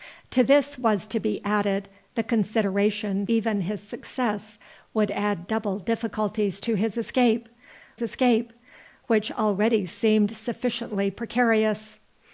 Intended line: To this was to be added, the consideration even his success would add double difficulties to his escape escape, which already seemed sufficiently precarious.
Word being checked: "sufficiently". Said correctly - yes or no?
yes